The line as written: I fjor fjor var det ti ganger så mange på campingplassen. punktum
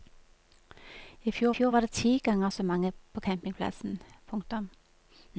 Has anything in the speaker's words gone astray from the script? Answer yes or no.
no